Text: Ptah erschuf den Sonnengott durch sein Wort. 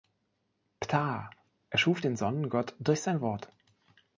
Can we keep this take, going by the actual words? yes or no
yes